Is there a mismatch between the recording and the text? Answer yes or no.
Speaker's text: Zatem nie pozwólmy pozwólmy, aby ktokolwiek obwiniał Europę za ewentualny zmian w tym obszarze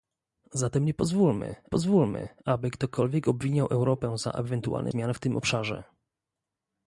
no